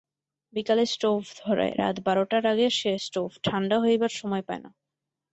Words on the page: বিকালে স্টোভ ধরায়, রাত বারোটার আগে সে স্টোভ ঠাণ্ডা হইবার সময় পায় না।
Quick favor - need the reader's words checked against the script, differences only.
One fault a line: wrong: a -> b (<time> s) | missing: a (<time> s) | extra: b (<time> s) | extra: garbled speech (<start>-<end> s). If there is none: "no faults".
no faults